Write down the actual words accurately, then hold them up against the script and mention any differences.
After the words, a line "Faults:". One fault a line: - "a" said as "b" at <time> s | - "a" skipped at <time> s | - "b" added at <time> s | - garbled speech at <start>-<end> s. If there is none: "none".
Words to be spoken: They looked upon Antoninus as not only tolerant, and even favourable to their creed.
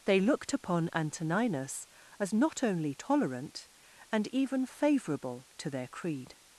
They looked upon Antoninus as not only tolerant, and even favourable to their creed.
Faults:
none